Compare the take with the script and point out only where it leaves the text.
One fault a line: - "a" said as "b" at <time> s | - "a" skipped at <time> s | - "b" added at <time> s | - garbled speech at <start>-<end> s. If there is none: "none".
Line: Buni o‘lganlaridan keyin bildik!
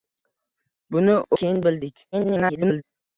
- "o‘lganlaridan" skipped at 1.2 s
- garbled speech at 2.1-2.8 s